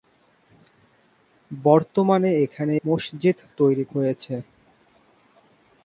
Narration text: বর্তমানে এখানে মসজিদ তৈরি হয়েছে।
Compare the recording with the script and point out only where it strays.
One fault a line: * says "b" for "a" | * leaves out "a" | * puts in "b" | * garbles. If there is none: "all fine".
all fine